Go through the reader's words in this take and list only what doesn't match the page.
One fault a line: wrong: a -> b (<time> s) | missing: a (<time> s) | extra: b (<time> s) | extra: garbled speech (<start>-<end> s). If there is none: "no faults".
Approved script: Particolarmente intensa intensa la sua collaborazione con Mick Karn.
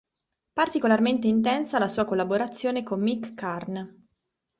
missing: intensa (1.8 s)